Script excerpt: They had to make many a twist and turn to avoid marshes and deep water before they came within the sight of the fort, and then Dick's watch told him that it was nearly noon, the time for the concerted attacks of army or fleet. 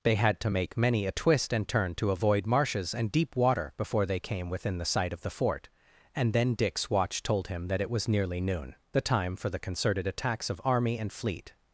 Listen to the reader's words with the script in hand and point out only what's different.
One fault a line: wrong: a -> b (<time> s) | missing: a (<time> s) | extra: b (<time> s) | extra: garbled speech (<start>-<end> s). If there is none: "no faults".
wrong: or -> and (11.0 s)